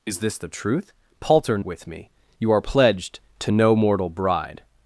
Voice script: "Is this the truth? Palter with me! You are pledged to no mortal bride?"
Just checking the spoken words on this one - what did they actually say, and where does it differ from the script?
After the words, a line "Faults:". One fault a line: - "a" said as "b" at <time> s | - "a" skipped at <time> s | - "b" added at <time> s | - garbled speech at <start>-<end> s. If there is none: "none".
"Is this the truth? Palter with me! You are pledged to no mortal bride?"
Faults:
none